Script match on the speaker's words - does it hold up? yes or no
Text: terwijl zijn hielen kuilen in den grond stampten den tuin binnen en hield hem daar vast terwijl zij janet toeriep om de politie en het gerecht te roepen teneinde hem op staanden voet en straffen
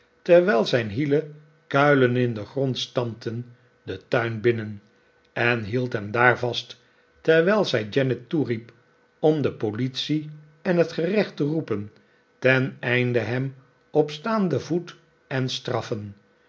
yes